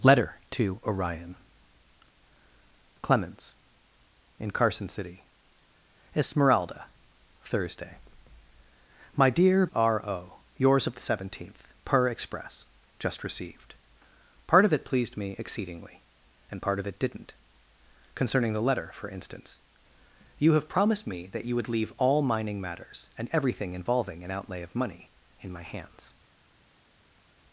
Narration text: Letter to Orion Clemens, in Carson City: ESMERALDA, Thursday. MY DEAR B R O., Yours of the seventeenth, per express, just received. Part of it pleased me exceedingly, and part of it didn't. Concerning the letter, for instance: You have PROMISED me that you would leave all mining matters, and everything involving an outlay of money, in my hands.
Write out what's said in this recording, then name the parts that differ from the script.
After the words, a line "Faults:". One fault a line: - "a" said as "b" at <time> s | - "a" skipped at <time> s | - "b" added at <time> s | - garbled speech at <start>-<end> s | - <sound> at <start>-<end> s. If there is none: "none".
Letter to Orion Clemens, in Carson City: ESMERALDA, Thursday. MY DEAR R O., Yours of the seventeenth, per express, just received. Part of it pleased me exceedingly, and part of it didn't. Concerning the letter, for instance: You have PROMISED me that you would leave all mining matters, and everything involving an outlay of money, in my hands.
Faults:
- "B" skipped at 9.7 s